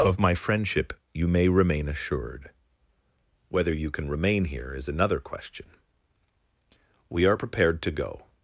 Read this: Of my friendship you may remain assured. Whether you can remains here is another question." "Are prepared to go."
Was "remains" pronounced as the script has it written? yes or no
no